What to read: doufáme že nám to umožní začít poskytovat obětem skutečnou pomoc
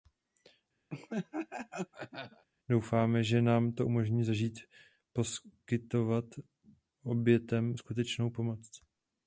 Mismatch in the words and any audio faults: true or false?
true